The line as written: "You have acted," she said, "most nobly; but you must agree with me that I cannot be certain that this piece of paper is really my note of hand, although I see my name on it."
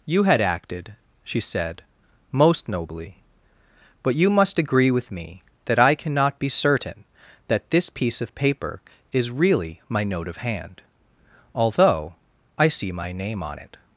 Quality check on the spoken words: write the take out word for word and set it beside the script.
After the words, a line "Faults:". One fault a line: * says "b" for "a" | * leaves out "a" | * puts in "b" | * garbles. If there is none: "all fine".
"You had acted," she said, "most nobly; but you must agree with me that I cannot be certain that this piece of paper is really my note of hand, although I see my name on it."
Faults:
* says "had" for "have"